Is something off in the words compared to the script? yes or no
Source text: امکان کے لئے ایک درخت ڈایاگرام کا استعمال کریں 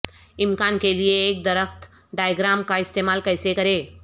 yes